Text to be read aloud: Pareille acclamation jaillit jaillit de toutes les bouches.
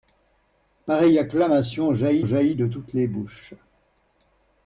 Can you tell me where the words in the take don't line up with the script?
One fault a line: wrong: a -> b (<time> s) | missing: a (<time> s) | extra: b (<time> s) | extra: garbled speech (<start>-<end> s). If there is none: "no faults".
no faults